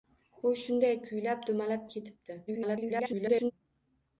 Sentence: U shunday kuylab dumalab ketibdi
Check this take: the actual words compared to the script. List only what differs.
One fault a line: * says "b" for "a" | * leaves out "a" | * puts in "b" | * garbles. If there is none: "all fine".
* garbles